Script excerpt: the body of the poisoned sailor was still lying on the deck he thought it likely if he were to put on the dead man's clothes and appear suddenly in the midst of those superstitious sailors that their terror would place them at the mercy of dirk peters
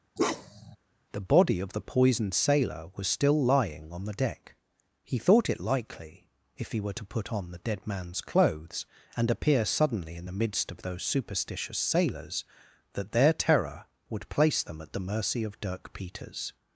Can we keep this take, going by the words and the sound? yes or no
no